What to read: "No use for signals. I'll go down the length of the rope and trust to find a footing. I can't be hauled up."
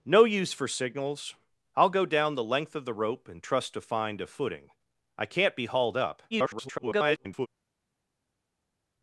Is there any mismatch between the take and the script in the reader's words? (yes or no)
yes